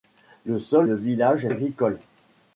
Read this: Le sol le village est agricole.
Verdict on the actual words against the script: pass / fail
pass